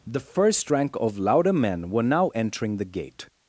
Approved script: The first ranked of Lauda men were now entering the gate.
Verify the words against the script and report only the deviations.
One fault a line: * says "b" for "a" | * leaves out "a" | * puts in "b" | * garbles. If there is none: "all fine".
* says "rank" for "ranked"